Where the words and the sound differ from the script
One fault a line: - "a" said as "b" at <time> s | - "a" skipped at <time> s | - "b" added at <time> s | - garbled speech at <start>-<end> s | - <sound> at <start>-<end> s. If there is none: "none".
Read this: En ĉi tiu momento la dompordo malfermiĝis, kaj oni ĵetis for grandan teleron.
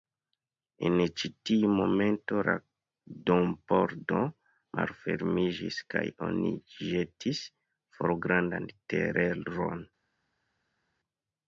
none